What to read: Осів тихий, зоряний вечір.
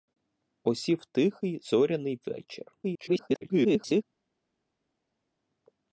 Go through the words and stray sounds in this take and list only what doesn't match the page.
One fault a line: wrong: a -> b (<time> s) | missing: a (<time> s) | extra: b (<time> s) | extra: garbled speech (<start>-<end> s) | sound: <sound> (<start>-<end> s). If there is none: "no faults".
extra: garbled speech (2.8-4.0 s)